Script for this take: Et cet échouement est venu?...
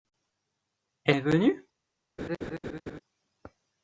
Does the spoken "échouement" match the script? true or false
false